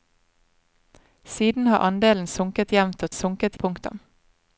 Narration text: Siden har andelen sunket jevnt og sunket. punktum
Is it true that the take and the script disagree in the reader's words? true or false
false